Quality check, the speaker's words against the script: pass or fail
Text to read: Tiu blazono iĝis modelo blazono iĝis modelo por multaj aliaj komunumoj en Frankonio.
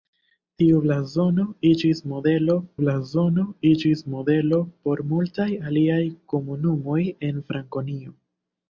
pass